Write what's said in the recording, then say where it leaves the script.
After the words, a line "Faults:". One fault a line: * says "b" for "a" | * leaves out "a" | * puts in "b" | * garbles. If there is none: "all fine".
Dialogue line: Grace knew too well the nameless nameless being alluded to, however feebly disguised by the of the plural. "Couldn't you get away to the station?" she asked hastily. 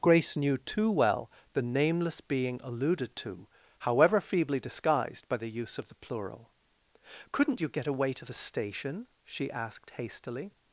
Grace knew too well the nameless being alluded to, however feebly disguised by the use of the plural. "Couldn't you get away to the station?" she asked hastily.
Faults:
* leaves out "nameless"
* puts in "use"